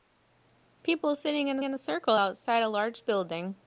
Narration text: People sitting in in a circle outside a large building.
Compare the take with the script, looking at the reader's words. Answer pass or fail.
pass